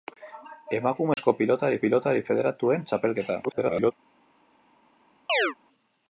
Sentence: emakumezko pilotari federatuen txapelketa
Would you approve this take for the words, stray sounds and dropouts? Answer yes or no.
no